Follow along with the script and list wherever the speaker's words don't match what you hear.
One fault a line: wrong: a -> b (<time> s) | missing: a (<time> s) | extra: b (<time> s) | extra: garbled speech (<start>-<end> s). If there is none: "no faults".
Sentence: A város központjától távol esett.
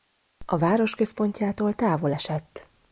no faults